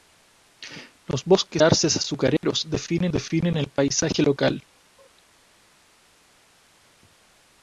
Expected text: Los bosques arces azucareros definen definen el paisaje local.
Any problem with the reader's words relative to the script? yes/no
no